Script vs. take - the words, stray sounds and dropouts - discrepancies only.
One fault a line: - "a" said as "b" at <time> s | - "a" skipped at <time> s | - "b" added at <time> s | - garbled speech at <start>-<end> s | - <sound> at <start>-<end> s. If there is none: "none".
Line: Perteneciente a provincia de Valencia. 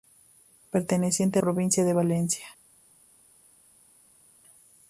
none